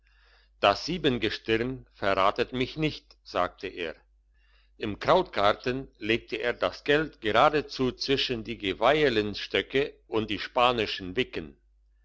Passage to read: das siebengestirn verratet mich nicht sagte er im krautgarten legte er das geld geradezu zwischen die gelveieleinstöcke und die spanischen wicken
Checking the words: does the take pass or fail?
pass